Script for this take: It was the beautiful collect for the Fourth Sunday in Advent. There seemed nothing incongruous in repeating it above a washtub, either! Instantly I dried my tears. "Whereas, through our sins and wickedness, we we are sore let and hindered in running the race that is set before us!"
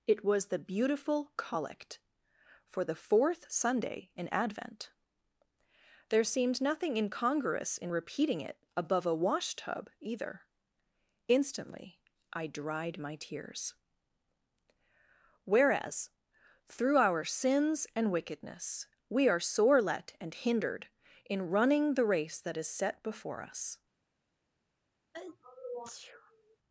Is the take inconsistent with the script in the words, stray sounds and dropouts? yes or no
yes